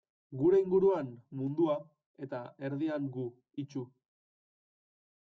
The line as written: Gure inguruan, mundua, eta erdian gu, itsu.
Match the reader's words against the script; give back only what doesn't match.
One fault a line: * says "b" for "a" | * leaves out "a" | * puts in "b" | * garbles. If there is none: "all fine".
all fine